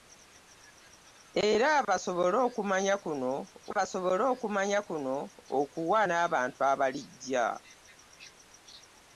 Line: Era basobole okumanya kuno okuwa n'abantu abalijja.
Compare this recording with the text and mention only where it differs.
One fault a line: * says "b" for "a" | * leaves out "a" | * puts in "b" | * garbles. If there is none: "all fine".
* puts in "basobole okumanya kuno"